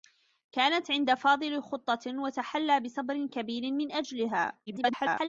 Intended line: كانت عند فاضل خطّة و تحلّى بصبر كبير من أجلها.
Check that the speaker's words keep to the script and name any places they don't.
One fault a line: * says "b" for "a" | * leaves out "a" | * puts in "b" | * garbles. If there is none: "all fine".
* garbles